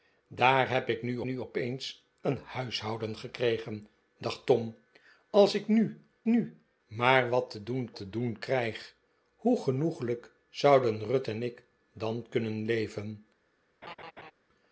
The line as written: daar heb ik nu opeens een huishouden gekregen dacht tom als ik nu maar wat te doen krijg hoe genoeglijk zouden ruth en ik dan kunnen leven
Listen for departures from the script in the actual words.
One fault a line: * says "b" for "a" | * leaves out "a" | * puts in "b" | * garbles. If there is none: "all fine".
* puts in "nu"
* puts in "nu"
* puts in "te doen"